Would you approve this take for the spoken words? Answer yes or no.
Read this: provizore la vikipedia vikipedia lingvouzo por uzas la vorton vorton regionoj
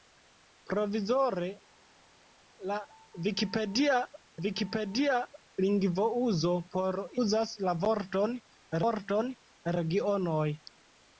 yes